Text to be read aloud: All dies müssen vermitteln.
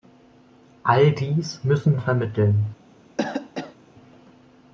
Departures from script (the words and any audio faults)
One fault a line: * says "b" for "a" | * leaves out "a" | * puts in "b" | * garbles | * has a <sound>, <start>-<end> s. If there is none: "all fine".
* has a cough, 3.2-3.8 s